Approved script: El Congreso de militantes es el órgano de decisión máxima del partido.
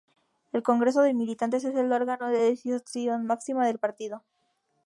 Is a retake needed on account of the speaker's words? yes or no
no